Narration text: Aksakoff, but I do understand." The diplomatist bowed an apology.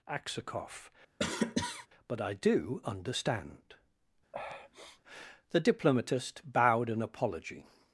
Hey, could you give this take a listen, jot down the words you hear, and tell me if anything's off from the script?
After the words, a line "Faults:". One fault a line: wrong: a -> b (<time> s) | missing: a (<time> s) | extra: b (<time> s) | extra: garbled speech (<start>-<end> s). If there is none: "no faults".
Aksakoff, but I do understand." The diplomatist bowed an apology.
Faults:
no faults